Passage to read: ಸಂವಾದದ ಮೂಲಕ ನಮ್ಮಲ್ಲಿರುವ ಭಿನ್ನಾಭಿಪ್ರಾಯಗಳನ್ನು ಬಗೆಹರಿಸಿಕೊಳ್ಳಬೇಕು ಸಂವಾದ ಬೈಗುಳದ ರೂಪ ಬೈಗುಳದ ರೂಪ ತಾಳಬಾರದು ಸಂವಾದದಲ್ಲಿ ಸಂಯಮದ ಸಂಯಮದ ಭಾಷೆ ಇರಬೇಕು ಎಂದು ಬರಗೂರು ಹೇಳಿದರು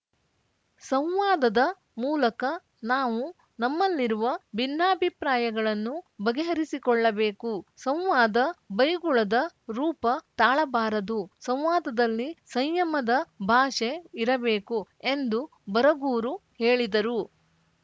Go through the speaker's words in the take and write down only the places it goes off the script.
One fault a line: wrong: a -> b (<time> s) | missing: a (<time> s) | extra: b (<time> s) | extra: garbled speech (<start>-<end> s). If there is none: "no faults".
extra: ನಾವು (2.9 s)
missing: ಬೈಗುಳದ ರೂಪ (10.0 s)
missing: ಸಂಯಮದ (13.1 s)